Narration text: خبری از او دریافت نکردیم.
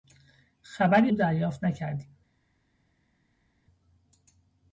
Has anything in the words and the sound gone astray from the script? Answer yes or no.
yes